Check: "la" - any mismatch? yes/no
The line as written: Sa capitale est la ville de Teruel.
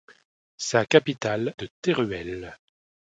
yes